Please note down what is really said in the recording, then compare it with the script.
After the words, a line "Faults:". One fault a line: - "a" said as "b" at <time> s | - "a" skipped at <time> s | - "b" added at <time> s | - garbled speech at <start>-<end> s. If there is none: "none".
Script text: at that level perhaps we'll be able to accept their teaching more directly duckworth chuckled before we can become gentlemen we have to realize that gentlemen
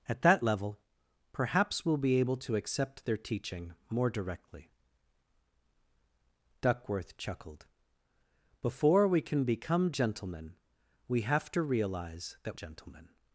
at that level perhaps we'll be able to accept their teaching more directly duckworth chuckled before we can become gentlemen we have to realize that gentlemen
Faults:
none